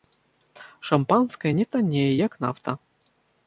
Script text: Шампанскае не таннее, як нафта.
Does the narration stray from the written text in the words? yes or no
no